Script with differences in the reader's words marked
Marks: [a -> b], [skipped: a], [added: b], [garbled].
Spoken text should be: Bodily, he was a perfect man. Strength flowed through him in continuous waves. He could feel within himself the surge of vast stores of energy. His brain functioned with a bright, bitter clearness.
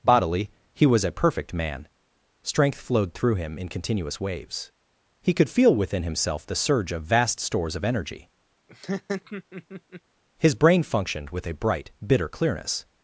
Bodily, he was a perfect man. Strength flowed through him in continuous waves. He could feel within himself the surge of vast stores of energy. His brain functioned with a bright, bitter clearness.